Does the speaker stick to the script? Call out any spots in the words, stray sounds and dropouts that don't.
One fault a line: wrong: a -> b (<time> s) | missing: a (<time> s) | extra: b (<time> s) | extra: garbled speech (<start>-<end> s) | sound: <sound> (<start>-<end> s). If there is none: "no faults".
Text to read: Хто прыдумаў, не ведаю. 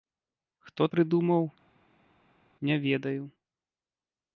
no faults